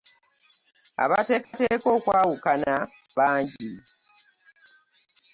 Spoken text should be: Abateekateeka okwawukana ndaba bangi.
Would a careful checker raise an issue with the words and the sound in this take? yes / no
yes